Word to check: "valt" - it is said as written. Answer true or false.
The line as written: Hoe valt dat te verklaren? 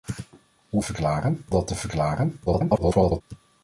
false